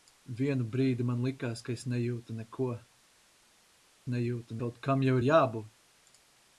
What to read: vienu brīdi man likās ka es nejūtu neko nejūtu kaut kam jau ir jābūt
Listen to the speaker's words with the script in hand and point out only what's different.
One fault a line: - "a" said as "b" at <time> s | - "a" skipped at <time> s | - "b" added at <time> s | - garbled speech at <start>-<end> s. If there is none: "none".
none